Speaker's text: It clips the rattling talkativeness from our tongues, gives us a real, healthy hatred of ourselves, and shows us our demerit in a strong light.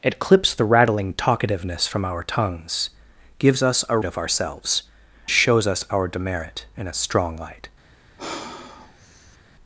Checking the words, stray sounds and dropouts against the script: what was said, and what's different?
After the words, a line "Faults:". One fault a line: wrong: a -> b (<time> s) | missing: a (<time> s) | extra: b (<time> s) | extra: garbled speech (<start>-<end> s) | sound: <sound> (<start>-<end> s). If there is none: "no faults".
It clips the rattling talkativeness from our tongues, gives us a of ourselves, shows us our demerit in a strong light.
Faults:
missing: real healthy hatred (4.0 s)
missing: and (4.8 s)
sound: sigh (8.2-9.4 s)